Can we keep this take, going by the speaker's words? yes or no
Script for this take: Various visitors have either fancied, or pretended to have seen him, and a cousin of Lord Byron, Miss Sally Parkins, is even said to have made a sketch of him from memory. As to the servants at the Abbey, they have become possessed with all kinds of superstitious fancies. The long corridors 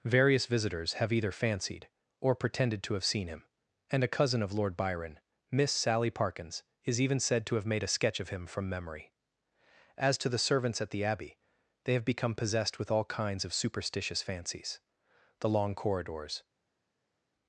yes